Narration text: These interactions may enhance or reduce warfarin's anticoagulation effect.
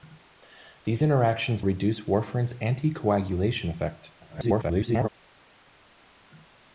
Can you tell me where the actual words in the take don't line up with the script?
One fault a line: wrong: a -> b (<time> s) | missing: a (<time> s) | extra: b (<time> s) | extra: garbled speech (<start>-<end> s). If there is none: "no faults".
missing: may enhance or (1.6 s)
extra: garbled speech (4.2-5.1 s)